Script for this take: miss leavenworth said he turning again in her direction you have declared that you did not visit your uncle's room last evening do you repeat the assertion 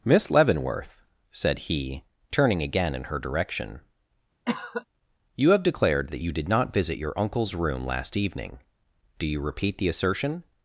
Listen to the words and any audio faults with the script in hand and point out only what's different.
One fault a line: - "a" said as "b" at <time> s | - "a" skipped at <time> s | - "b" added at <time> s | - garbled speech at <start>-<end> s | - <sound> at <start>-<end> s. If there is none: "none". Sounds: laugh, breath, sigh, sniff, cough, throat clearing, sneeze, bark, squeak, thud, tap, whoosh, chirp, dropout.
- cough at 4.5-4.9 s